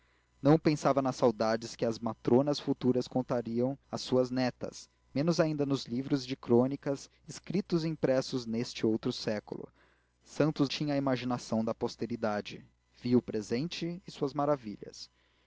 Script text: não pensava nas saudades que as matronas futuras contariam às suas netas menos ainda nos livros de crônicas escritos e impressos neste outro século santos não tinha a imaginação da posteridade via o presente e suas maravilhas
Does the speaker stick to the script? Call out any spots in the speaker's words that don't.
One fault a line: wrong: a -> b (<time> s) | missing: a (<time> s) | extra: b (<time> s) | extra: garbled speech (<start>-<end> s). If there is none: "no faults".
missing: não (10.7 s)